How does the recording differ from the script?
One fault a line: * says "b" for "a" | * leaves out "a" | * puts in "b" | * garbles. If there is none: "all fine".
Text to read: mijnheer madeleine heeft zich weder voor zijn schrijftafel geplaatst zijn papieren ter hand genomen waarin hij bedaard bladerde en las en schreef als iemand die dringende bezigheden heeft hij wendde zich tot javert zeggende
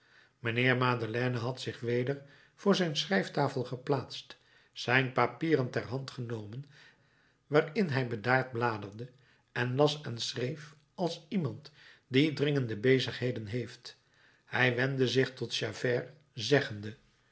* says "had" for "heeft"